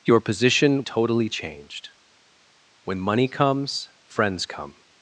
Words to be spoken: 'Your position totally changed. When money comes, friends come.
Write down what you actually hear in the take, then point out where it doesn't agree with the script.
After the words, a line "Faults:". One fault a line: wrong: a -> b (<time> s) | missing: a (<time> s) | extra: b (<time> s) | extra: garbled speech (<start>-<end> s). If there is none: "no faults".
'Your position totally changed. When money comes, friends come.
Faults:
no faults